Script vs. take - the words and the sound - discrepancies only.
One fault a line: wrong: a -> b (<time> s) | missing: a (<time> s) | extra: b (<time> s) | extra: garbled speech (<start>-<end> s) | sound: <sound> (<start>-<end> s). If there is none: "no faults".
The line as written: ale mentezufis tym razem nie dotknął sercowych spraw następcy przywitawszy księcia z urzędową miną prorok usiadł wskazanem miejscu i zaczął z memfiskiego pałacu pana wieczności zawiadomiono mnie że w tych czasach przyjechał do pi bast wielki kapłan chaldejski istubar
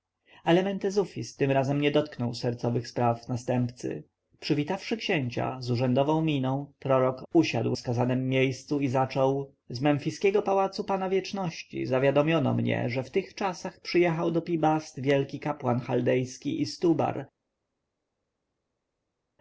no faults